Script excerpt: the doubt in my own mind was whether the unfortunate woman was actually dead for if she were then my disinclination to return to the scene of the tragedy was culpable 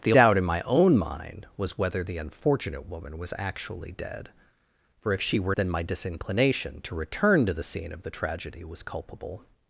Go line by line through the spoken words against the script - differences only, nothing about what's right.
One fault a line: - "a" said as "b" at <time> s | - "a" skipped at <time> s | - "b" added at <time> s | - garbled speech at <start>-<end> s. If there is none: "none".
none